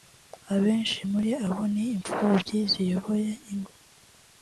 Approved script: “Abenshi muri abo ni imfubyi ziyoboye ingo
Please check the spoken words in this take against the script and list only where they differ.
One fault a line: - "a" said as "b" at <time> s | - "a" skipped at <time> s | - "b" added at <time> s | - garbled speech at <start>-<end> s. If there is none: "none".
none